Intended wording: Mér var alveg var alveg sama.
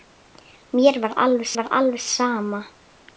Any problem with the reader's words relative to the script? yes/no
no